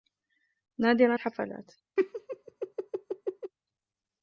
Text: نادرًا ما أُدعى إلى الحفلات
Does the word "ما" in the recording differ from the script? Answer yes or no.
yes